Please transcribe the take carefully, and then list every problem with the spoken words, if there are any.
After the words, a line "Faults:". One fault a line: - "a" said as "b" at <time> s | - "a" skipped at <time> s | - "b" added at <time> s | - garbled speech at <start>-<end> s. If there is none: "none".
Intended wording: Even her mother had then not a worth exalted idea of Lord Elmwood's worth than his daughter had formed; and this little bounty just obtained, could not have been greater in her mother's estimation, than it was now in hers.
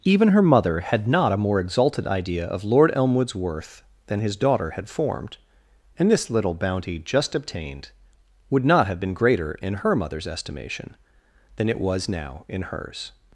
Even her mother had not a more exalted idea of Lord Elmwood's worth than his daughter had formed; and this little bounty just obtained, would not have been greater in her mother's estimation, than it was now in hers.
Faults:
- "then" skipped at 1.1 s
- "worth" said as "more" at 1.4 s
- "could" said as "would" at 8.5 s